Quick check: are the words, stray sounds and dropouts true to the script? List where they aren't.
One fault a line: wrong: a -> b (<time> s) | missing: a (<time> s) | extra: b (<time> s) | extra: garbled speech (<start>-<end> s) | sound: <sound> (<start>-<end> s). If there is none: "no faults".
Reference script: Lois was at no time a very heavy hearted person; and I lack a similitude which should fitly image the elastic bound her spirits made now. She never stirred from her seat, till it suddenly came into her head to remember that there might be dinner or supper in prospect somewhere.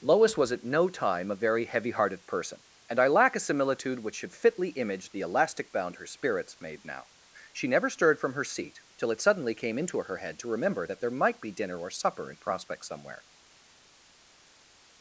no faults